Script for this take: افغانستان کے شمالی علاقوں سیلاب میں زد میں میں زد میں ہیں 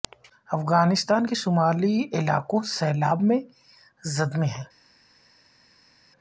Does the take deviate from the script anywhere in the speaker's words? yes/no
yes